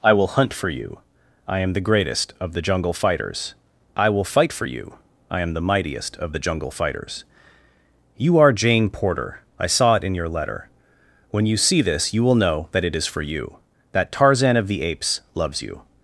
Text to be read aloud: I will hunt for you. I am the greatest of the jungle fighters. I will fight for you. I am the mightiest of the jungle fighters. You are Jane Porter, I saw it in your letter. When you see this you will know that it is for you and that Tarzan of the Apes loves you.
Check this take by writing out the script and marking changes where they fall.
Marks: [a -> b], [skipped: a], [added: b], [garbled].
I will hunt for you. I am the greatest of the jungle fighters. I will fight for you. I am the mightiest of the jungle fighters. You are Jane Porter, I saw it in your letter. When you see this you will know that it is for you [skipped: and] that Tarzan of the Apes loves you.